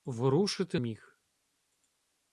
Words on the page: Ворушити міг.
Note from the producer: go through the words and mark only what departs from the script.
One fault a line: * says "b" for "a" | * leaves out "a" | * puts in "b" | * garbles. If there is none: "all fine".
all fine